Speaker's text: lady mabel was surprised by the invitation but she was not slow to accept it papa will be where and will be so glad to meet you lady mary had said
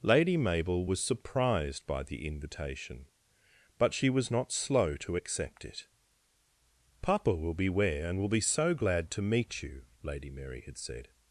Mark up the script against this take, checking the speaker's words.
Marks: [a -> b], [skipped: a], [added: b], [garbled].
lady mabel was surprised by the invitation but she was not slow to accept it papa will be where and will be so glad to meet you lady mary had said